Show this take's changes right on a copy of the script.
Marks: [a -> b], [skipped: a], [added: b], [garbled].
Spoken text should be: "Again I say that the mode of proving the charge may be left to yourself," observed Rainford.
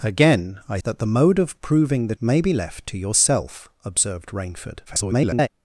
"Again I [skipped: say] that the mode of proving the [skipped: charge] may be left to yourself," observed Rainford. [garbled]